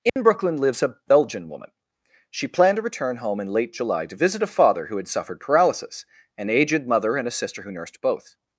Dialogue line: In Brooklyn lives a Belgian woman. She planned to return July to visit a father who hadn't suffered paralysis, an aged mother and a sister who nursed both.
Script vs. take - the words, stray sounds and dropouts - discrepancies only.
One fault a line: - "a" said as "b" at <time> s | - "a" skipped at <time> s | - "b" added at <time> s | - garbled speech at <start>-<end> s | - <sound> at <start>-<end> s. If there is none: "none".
- dropout at 0.1-0.2 s
- "home in late" added at 3.2 s
- "hadn't" said as "had" at 5.0 s